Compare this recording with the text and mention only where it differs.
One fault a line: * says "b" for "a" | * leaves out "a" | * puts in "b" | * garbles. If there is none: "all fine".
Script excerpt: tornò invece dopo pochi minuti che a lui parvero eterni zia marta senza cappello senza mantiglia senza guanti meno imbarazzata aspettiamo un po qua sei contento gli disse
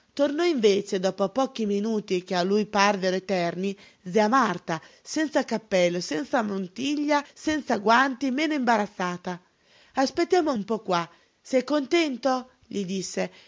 all fine